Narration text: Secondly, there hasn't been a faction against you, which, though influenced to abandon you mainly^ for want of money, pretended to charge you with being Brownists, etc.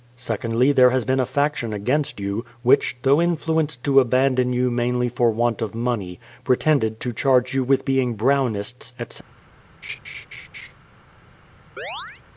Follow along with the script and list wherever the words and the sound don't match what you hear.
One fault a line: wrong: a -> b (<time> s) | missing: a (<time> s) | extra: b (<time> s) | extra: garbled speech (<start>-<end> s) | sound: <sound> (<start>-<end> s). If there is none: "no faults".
wrong: hasn't -> has (0.9 s)
sound: laugh (9.8-10.7 s)
sound: chirp (11.8-12.2 s)